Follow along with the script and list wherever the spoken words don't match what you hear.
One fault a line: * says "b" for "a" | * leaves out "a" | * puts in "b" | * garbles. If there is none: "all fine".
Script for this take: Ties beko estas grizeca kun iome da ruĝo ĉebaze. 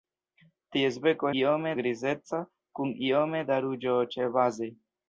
* says "iome" for "estas"